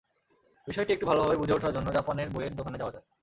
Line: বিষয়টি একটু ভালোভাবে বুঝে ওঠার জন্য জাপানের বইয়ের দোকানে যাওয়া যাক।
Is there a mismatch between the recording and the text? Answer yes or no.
no